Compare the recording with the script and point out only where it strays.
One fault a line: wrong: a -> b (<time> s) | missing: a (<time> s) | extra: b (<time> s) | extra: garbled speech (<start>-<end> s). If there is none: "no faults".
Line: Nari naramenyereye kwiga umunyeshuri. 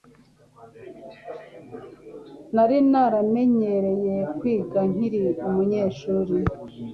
extra: nkiri (4.9 s)